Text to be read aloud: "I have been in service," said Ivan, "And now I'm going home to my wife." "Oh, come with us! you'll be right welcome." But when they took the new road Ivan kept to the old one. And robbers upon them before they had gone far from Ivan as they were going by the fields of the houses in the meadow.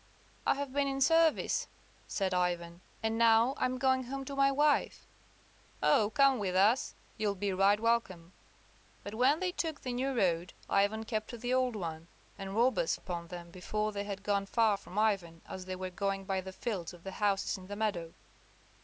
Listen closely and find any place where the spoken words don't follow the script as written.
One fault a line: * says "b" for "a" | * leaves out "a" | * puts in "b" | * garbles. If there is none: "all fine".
all fine